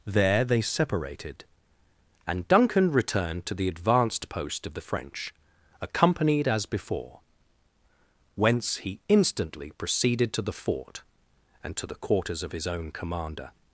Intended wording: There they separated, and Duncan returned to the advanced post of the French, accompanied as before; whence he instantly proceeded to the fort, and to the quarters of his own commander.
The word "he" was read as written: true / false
true